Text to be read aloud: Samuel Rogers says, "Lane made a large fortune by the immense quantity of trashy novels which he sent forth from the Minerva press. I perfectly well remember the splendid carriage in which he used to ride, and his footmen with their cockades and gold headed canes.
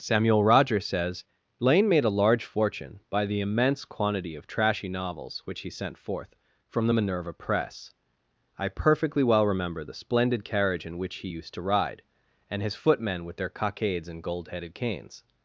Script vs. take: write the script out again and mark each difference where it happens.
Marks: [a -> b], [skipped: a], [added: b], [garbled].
Samuel Rogers says, "Lane made a large fortune by the immense quantity of trashy novels which he sent forth from the Minerva press. I perfectly well remember the splendid carriage in which he used to ride, and his footmen with their cockades and gold headed canes.